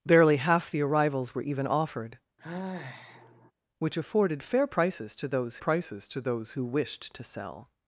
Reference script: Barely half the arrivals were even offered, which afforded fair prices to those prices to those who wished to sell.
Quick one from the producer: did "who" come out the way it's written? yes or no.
yes